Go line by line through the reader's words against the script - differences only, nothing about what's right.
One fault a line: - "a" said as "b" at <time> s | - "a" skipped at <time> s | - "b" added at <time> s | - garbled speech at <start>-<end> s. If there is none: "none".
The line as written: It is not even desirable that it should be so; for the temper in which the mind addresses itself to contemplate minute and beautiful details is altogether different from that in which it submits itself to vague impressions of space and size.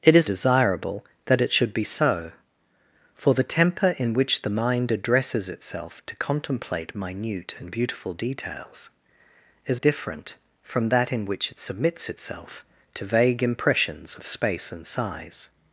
- "not even" skipped at 0.3 s
- "altogether" skipped at 9.8 s